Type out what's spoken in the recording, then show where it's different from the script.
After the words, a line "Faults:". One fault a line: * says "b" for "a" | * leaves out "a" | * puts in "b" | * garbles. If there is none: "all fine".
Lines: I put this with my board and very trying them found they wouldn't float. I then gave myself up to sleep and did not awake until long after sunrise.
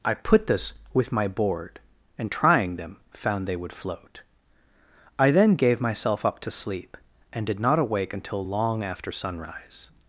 I put this with my board and trying them found they would float. I then gave myself up to sleep and did not awake until long after sunrise.
Faults:
* leaves out "very"
* says "would" for "wouldn't"